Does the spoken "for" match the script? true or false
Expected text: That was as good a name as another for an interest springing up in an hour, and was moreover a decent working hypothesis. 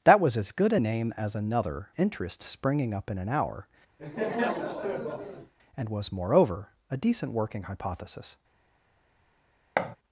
false